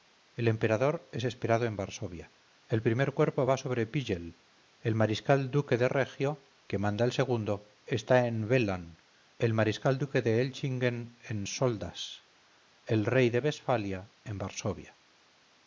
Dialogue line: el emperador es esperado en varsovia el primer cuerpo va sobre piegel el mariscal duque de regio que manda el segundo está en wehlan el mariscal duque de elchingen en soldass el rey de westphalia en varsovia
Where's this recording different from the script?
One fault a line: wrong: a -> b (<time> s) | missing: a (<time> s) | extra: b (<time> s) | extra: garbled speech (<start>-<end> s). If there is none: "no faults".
no faults